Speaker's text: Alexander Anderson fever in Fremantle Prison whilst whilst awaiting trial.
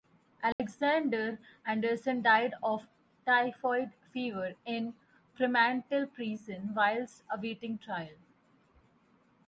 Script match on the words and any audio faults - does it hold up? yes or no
no